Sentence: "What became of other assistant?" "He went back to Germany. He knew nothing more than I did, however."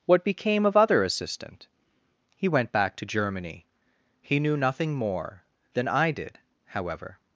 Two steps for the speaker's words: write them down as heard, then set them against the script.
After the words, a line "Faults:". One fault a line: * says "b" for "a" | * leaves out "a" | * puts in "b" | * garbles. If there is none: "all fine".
"What became of other assistant?" "He went back to Germany. He knew nothing more than I did, however."
Faults:
all fine